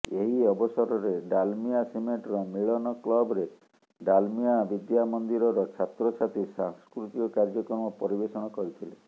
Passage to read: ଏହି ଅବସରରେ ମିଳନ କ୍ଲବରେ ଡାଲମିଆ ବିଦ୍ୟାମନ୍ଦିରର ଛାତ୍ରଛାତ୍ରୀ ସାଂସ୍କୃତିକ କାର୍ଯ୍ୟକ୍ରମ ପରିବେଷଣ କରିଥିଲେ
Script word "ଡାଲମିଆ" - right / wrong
right